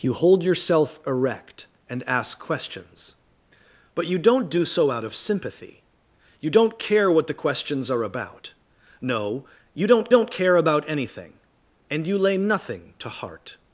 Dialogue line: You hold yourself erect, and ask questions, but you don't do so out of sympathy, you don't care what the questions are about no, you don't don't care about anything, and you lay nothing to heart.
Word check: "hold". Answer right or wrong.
right